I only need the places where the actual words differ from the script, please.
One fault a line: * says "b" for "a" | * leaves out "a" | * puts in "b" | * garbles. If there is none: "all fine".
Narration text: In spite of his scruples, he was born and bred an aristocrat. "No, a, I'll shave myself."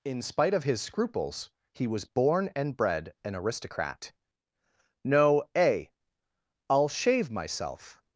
all fine